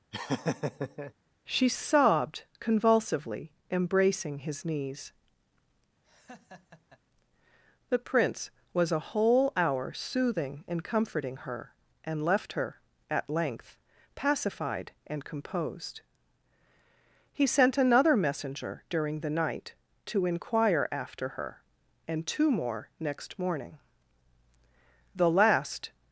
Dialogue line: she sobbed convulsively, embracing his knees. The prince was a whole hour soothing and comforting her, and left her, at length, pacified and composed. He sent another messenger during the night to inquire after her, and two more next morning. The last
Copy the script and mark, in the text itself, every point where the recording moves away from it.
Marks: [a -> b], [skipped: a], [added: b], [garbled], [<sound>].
[laugh] she sobbed convulsively, embracing his knees. [laugh] The prince was a whole hour soothing and comforting her, and left her, at length, pacified and composed. He sent another messenger during the night to inquire after her, and two more next morning. The last